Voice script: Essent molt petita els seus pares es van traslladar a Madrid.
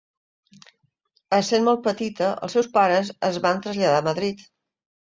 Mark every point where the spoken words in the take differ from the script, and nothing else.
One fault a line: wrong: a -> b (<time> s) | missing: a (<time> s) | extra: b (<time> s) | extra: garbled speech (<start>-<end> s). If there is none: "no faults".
no faults